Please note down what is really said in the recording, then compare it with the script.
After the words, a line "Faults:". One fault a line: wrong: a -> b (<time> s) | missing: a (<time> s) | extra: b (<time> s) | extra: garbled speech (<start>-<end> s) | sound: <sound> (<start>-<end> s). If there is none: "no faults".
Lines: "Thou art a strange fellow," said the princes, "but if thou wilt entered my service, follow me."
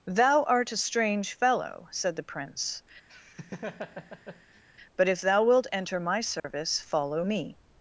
"Thou art a strange fellow," said the prince, "but if thou wilt enter my service, follow me."
Faults:
wrong: princes -> prince (2.2 s)
sound: laugh (3.1-4.6 s)
wrong: entered -> enter (5.7 s)
sound: dropout (6.4-6.4 s)